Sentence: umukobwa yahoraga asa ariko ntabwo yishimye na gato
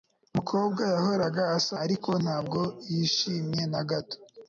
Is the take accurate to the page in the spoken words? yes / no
yes